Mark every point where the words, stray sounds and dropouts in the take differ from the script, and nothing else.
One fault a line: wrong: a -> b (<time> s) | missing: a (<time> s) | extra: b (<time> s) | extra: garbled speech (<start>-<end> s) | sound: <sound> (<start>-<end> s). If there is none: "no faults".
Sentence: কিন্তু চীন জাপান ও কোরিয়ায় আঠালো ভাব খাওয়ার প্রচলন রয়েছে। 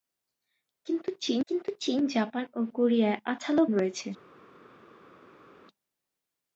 extra: কিন্তু চীন (1.5 s)
missing: ভাব খাওয়ার প্রচলন (3.6 s)